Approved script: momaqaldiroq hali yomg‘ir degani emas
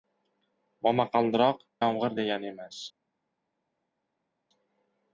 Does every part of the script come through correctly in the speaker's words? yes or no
no